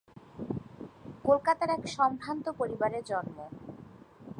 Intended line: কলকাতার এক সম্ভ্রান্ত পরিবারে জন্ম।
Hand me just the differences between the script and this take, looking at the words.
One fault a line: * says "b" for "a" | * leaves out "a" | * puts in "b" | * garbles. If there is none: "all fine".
all fine